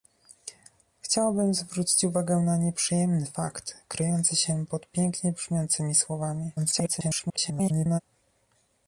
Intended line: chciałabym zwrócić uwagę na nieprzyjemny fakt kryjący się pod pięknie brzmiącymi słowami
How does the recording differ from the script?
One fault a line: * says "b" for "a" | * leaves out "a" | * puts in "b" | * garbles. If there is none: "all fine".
* garbles